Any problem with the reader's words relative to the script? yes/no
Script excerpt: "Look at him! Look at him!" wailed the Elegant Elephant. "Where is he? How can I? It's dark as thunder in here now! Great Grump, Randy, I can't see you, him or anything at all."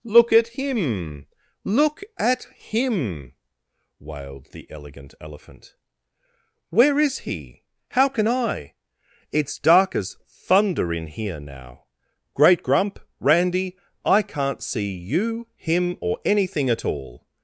no